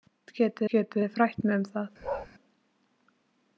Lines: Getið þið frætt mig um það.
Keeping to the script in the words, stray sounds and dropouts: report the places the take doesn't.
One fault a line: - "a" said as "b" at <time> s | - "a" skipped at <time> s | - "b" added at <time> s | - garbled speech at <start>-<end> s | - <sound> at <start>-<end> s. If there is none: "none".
- "getið" added at 0.7 s
- bark at 2.0-2.3 s